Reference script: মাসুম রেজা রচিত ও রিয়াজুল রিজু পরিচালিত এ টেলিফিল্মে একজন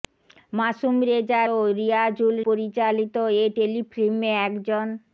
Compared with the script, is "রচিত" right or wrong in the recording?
wrong